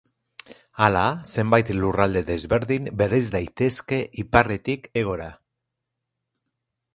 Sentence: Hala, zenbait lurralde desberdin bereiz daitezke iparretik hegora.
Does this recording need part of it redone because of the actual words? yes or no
no